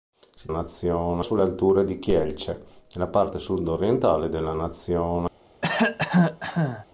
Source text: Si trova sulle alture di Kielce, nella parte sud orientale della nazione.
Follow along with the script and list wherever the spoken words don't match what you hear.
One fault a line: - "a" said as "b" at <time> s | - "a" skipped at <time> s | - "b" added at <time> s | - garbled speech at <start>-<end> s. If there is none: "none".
- "trova" said as "nazione" at 0.5 s